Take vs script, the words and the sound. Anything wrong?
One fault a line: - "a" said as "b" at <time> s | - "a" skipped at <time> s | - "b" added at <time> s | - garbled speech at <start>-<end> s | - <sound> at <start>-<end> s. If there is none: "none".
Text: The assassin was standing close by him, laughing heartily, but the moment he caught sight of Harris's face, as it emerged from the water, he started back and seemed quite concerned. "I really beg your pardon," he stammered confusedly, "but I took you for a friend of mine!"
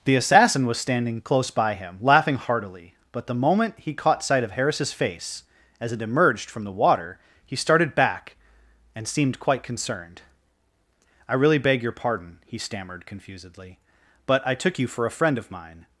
none